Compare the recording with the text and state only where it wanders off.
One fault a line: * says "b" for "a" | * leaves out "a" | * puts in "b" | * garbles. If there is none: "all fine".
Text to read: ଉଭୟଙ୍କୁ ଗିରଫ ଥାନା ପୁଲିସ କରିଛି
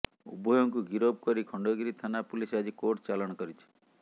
* puts in "କରି ଖଣ୍ଡଗିରି"
* puts in "ଆଜି କୋର୍ଟ ଚାଲାଣ"